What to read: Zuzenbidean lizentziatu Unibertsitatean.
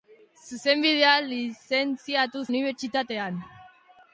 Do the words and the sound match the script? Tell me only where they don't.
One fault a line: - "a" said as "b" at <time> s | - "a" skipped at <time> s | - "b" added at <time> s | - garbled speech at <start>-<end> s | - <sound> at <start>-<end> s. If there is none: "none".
none